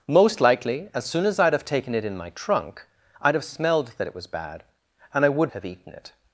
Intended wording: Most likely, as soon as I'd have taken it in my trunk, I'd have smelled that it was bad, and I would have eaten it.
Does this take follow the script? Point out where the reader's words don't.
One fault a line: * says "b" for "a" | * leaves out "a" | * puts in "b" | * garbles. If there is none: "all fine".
all fine